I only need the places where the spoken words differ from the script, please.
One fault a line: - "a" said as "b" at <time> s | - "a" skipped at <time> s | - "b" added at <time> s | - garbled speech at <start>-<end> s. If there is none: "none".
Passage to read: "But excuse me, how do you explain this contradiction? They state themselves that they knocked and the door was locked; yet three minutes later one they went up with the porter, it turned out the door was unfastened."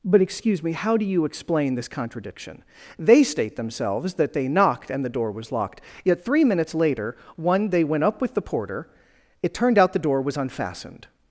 none